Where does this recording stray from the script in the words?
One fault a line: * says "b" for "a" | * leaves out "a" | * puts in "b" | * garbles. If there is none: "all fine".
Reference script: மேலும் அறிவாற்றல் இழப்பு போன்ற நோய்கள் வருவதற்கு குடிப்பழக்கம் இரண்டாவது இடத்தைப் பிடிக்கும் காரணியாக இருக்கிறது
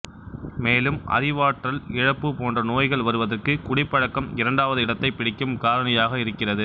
all fine